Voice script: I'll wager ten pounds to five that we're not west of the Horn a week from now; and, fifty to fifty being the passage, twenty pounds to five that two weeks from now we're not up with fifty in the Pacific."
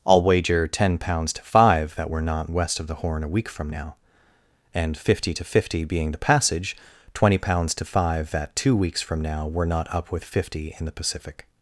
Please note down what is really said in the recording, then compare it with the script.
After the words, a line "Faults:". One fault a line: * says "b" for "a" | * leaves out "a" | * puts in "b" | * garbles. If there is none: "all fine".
I'll wager ten pounds to five that we're not west of the Horn a week from now; and, fifty to fifty being the passage, twenty pounds to five that two weeks from now we're not up with fifty in the Pacific."
Faults:
all fine